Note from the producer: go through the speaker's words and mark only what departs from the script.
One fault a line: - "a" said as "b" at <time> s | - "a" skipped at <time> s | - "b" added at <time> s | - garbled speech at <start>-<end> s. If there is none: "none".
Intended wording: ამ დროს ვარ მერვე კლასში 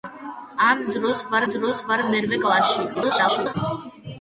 - "დროს ვარ" added at 1.5 s
- garbled speech at 2.9-3.5 s